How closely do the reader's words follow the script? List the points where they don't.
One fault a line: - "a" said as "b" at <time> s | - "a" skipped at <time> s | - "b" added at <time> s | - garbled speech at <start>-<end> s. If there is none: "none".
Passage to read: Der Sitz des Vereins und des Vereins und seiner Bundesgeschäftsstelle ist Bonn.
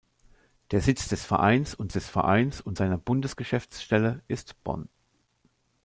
none